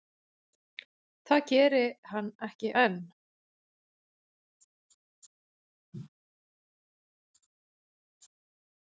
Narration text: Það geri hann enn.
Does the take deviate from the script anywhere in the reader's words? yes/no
yes